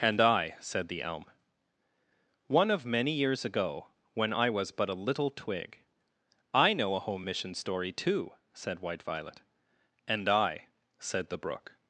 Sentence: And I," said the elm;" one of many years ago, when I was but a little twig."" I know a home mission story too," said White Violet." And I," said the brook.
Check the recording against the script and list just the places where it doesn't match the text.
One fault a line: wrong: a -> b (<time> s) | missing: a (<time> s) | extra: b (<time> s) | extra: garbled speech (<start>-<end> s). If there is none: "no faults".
no faults